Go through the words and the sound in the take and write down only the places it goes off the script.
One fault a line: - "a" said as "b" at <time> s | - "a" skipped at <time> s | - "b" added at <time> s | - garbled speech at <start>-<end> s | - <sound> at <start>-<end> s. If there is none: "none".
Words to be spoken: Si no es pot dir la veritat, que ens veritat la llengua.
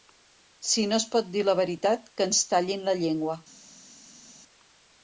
- "veritat" said as "tallin" at 2.5 s